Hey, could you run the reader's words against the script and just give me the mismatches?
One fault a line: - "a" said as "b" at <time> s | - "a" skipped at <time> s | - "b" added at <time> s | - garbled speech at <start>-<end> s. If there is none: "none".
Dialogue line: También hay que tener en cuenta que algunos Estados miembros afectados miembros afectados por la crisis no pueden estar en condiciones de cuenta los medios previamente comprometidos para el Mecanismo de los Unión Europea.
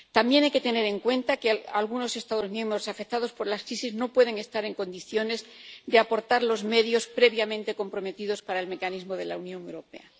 - "miembros afectados" skipped at 3.3 s
- "cuenta" said as "aportar" at 6.0 s
- "los" said as "la" at 9.2 s